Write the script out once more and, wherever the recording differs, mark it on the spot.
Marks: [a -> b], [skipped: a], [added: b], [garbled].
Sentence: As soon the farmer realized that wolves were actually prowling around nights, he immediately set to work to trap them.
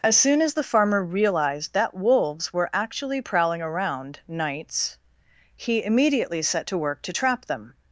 As soon [added: as] the farmer realized that wolves were actually prowling around nights, he immediately set to work to trap them.